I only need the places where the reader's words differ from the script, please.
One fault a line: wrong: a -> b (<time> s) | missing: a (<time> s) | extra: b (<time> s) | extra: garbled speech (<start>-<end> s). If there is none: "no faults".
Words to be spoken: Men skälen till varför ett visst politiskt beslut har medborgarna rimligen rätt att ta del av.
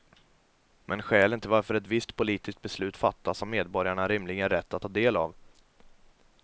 extra: fattas (3.0 s)